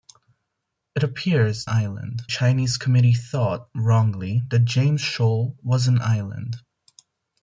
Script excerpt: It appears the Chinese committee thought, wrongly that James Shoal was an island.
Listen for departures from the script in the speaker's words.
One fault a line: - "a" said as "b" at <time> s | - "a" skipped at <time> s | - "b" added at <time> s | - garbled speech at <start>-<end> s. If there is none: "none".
- "the" said as "island" at 1.7 s